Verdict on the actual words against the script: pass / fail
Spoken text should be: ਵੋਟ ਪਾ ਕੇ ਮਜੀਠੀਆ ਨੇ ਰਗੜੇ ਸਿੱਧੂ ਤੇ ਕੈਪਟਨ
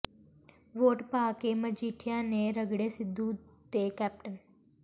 pass